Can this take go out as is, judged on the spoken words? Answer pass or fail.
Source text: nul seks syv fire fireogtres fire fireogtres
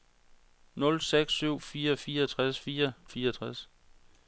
pass